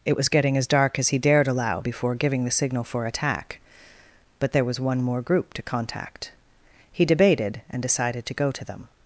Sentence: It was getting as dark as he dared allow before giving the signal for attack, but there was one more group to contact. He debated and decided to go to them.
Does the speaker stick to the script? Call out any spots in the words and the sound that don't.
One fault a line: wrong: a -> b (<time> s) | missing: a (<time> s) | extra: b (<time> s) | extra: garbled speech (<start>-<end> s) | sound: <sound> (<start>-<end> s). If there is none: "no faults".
no faults